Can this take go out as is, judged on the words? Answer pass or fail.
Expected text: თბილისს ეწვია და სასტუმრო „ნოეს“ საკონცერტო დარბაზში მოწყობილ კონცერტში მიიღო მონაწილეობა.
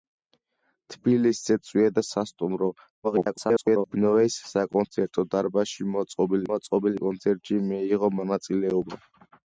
fail